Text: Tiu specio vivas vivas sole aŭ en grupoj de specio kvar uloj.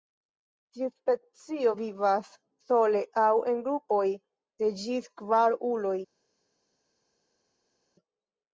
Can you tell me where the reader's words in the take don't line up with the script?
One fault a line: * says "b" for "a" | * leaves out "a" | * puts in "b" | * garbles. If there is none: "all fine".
* leaves out "vivas"
* says "ĝis" for "specio"